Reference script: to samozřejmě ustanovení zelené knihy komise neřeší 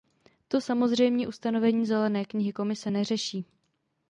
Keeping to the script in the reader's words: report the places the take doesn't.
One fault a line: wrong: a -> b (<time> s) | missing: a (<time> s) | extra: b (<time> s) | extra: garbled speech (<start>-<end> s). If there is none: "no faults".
no faults